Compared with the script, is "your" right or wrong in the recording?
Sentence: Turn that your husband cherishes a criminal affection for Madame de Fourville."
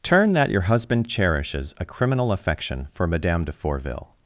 right